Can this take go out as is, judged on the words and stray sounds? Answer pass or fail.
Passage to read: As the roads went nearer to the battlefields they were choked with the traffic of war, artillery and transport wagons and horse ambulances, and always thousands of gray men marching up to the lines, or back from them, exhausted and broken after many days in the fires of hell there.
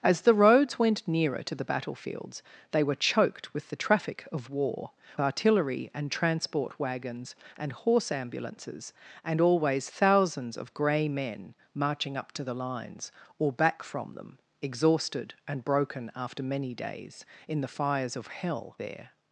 pass